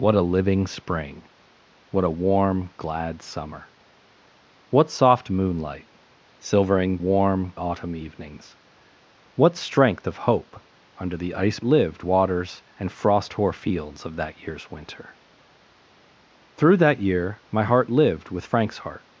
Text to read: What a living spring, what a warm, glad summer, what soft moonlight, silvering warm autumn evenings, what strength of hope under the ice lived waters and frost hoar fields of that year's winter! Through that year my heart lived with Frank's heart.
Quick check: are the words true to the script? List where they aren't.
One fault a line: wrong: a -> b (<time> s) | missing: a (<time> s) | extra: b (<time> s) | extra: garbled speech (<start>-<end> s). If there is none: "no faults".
no faults